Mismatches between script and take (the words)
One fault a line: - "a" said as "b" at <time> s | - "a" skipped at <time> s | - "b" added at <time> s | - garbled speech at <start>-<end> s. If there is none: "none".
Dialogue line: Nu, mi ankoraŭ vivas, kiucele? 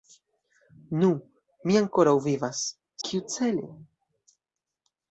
none